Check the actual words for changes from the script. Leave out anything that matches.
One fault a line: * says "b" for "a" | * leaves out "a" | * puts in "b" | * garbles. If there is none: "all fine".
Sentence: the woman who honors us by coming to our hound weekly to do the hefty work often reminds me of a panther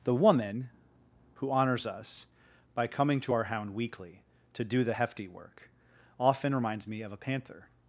all fine